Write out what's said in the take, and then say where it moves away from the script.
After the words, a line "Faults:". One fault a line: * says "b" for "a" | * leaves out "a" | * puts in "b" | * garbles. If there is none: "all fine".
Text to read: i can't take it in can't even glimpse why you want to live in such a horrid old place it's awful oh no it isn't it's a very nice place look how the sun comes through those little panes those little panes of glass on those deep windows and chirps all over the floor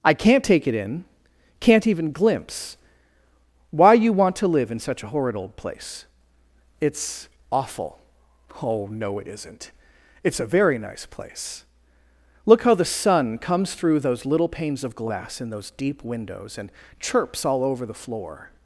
i can't take it in can't even glimpse why you want to live in such a horrid old place it's awful oh no it isn't it's a very nice place look how the sun comes through those little panes of glass in those deep windows and chirps all over the floor
Faults:
* leaves out "those little panes"
* says "in" for "on"